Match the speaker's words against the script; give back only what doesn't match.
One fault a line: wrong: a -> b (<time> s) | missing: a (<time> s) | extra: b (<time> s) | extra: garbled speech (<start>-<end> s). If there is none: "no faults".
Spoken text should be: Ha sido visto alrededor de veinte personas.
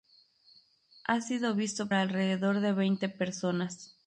no faults